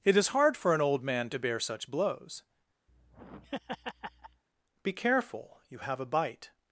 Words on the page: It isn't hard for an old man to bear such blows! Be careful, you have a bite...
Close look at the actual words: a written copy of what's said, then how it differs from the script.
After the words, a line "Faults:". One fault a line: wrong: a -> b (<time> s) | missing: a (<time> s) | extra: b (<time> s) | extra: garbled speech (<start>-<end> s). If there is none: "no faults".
It is hard for an old man to bear such blows! Be careful, you have a bite...
Faults:
wrong: isn't -> is (0.2 s)